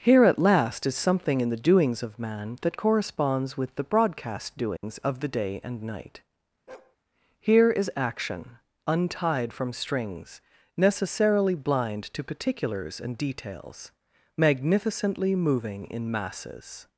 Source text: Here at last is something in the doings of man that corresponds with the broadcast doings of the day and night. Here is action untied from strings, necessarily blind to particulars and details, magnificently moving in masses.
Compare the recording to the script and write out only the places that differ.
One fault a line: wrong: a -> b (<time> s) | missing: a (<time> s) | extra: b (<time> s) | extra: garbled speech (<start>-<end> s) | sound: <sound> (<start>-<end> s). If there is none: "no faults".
sound: dropout (4.8-4.8 s)
sound: bark (6.7-7.0 s)